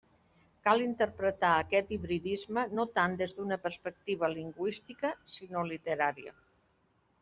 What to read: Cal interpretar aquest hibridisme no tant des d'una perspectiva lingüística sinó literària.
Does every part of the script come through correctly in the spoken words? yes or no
yes